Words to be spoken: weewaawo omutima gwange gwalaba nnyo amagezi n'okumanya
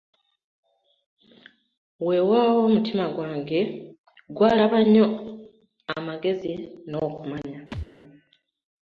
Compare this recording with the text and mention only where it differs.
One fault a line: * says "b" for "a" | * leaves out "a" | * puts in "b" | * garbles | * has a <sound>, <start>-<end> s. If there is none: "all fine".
* has a thud, 7.7-7.9 s